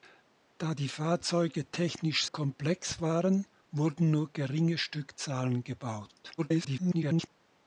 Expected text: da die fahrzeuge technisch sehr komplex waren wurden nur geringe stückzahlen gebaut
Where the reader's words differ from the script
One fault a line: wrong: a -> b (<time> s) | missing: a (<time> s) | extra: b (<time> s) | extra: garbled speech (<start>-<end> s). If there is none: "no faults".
missing: sehr (2.2 s)
extra: garbled speech (6.4-7.3 s)